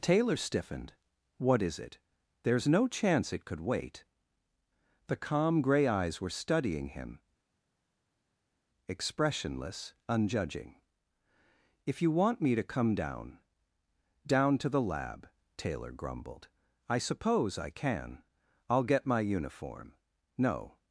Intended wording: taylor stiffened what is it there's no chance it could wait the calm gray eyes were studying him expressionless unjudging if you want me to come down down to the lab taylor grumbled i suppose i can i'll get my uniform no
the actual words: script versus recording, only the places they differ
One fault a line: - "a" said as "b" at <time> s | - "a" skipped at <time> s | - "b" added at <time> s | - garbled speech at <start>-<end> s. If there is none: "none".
none